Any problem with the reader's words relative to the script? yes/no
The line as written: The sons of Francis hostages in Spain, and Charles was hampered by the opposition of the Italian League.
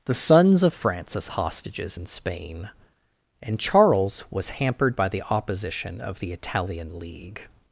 no